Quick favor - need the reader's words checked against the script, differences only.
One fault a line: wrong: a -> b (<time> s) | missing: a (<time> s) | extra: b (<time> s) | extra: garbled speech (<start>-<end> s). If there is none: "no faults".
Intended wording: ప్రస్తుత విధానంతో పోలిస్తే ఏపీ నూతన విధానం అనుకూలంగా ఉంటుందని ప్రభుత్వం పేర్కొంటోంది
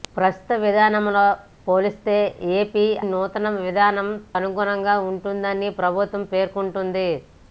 no faults